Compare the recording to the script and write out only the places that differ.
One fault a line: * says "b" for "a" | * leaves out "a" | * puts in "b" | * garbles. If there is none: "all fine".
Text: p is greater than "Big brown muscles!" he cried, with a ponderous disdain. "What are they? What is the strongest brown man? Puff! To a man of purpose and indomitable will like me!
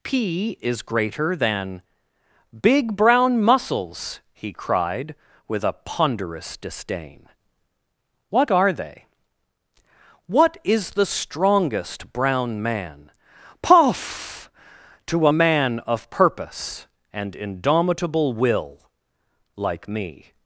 all fine